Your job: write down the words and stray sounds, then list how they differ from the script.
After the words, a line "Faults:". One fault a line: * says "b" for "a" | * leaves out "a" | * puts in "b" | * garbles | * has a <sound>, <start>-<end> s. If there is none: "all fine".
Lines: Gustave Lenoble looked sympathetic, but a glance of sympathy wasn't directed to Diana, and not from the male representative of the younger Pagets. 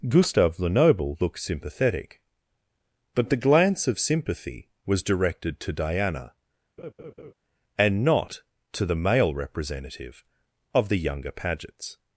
Gustave Lenoble looked sympathetic, but the glance of sympathy was directed to Diana, and not to the male representative of the younger Pagets.
Faults:
* says "the" for "a"
* says "was" for "wasn't"
* has a laugh, 6.8-7.3 s
* says "to" for "from"